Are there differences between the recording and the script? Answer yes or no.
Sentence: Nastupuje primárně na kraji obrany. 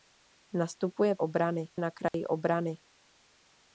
yes